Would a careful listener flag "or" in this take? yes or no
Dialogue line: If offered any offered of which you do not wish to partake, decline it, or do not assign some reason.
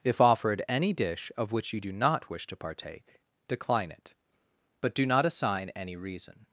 yes